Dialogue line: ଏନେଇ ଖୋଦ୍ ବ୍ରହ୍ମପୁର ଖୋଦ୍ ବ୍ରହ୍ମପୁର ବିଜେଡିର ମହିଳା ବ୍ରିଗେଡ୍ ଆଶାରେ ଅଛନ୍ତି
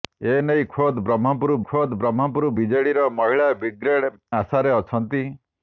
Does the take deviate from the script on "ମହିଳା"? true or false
false